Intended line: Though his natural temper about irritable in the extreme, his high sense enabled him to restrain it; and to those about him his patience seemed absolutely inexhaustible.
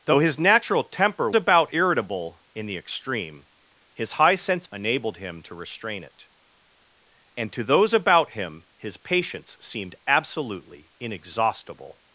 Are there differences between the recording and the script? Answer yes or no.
no